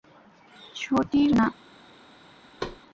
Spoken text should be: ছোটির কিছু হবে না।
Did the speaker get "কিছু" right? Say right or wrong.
wrong